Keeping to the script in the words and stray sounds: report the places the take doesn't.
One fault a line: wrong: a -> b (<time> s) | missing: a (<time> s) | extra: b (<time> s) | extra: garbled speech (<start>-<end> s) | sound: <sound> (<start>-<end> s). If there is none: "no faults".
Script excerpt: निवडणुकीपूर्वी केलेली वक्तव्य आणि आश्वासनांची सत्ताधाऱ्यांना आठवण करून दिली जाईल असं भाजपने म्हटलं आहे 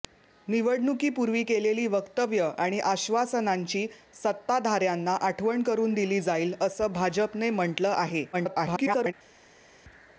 extra: garbled speech (8.3-9.1 s)